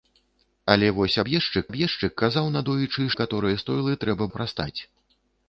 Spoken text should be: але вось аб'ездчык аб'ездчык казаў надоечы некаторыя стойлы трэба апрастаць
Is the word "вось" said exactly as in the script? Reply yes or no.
yes